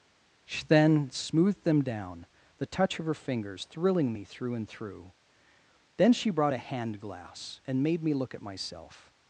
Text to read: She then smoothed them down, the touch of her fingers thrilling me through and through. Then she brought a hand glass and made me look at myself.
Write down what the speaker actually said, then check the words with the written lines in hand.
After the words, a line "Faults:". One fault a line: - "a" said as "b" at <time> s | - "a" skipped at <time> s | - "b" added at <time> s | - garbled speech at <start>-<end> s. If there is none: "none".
She then smoothed them down, the touch of her fingers thrilling me through and through. Then she brought a hand glass and made me look at myself.
Faults:
none